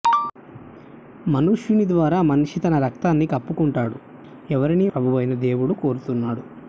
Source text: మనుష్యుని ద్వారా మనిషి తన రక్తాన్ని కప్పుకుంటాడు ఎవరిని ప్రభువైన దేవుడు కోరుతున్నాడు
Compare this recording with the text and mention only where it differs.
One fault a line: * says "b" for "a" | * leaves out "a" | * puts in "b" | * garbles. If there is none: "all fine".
all fine